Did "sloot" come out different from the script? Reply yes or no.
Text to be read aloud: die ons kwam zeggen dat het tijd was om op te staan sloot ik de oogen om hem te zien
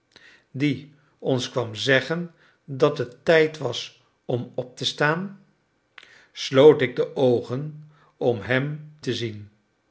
no